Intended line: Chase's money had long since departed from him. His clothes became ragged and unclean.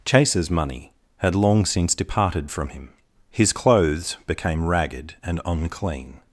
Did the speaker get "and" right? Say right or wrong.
right